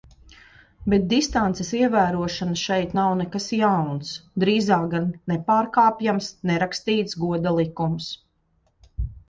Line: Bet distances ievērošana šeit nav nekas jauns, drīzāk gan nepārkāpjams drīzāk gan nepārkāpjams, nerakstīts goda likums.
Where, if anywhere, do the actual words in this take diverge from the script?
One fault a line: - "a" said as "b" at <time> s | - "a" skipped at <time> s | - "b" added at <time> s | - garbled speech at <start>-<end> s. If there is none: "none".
- "drīzāk gan nepārkāpjams" skipped at 6.3 s